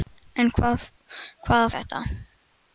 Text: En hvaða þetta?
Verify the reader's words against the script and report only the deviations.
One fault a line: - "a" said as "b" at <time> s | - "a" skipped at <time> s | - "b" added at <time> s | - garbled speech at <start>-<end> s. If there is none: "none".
none